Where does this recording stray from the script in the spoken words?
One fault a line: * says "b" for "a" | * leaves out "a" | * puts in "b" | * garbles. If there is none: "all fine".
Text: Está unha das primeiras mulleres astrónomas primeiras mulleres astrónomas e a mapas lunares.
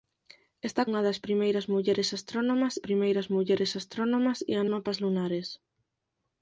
all fine